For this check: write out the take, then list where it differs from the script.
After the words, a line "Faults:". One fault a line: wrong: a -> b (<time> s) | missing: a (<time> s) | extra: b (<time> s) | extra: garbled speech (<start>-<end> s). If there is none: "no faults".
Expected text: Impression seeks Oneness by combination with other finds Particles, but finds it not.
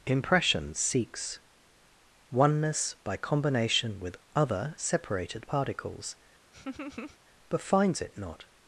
Impression seeks Oneness by combination with other separated Particles, but finds it not.
Faults:
wrong: finds -> separated (4.8 s)